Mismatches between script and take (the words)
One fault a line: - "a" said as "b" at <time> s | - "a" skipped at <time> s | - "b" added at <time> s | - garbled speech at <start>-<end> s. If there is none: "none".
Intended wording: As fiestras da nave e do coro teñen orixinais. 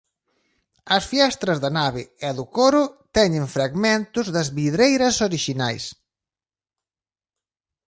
- "fragmentos das vidreiras" added at 3.5 s